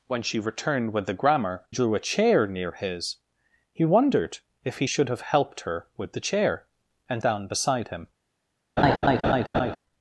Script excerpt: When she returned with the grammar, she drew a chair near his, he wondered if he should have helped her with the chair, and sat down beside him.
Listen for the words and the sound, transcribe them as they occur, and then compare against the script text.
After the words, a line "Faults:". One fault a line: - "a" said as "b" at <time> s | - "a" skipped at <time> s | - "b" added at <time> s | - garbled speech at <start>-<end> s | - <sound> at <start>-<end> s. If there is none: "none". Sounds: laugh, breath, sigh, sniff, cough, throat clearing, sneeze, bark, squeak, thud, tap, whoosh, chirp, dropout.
When she returned with the grammar, drew a chair near his, he wondered if he should have helped her with the chair, and down beside him.
Faults:
- "she" skipped at 1.6 s
- "sat" skipped at 7.2 s
- laugh at 8.8-9.8 s